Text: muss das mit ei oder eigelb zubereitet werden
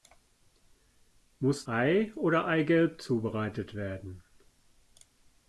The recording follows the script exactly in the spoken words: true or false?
false